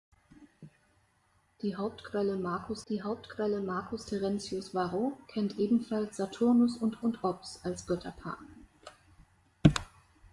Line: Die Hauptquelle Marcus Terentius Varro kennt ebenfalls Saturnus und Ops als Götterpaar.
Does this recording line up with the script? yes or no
no